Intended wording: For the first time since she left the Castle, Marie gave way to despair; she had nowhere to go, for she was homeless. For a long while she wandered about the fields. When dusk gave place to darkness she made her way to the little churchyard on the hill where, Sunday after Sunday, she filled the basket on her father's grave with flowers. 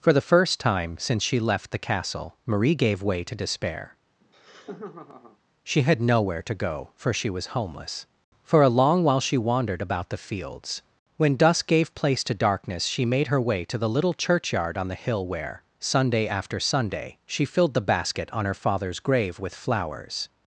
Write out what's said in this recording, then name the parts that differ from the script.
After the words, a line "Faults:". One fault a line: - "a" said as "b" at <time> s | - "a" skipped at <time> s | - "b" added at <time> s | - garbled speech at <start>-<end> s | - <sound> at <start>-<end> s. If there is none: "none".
For the first time since she left the Castle, Marie gave way to despair; she had nowhere to go, for she was homeless. For a long while she wandered about the fields. When dusk gave place to darkness she made her way to the little churchyard on the hill where, Sunday after Sunday, she filled the basket on her father's grave with flowers.
Faults:
- laugh at 4.2-5.4 s